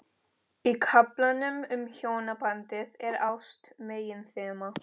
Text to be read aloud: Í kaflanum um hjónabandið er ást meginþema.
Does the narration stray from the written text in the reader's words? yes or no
no